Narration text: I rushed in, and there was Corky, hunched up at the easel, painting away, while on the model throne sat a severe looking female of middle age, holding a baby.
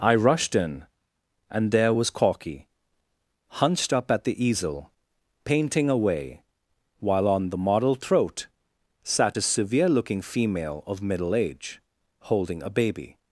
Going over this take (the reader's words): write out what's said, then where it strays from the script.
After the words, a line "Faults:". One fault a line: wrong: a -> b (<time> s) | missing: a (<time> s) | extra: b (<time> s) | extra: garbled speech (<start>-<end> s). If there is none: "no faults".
I rushed in, and there was Corky, hunched up at the easel, painting away, while on the model throat sat a severe looking female of middle age, holding a baby.
Faults:
wrong: throne -> throat (7.9 s)